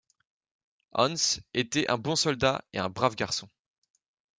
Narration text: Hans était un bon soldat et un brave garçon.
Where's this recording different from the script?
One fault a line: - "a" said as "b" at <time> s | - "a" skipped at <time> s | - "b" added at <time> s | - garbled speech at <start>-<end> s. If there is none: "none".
none